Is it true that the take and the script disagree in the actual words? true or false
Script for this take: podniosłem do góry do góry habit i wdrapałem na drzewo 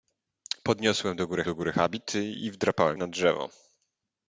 false